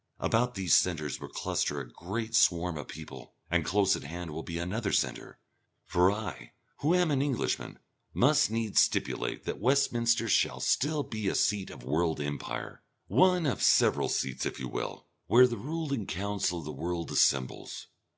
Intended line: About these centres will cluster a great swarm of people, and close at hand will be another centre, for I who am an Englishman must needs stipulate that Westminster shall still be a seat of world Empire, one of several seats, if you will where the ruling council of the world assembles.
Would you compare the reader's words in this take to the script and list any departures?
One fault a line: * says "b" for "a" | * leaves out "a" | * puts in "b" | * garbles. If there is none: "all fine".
all fine